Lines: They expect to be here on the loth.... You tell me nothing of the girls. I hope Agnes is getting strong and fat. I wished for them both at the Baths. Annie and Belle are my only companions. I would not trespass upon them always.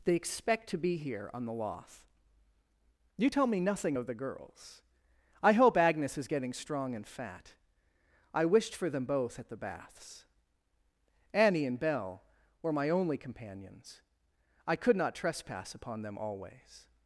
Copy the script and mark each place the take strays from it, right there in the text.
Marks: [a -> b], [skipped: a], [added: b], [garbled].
They expect to be here on the loth.... You tell me nothing of the girls. I hope Agnes is getting strong and fat. I wished for them both at the Baths. Annie and Belle [are -> were] my only companions. I [would -> could] not trespass upon them always.